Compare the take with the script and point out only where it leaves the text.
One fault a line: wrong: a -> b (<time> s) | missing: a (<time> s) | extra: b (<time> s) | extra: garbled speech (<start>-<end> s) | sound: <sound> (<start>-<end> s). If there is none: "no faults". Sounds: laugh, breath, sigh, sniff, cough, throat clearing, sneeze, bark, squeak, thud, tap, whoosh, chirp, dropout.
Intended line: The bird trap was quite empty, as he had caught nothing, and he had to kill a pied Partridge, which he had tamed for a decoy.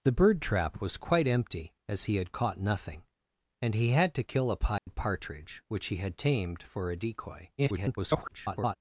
sound: dropout (4.8-4.9 s)
extra: garbled speech (7.6-8.8 s)